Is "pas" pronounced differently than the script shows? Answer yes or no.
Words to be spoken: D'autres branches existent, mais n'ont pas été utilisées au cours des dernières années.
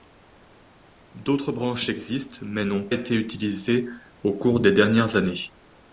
yes